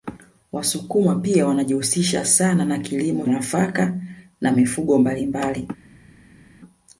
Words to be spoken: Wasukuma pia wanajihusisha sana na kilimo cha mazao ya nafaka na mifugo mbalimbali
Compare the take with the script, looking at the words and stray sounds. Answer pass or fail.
fail